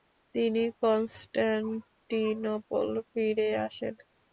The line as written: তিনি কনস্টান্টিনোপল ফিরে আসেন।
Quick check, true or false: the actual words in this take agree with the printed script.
true